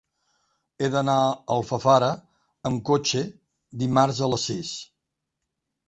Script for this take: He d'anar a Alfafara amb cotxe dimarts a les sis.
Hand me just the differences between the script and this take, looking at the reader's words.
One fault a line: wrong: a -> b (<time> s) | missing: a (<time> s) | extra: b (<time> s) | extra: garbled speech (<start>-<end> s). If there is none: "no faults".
no faults